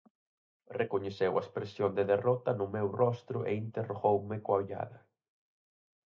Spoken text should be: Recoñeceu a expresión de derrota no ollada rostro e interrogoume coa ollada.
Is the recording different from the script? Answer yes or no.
yes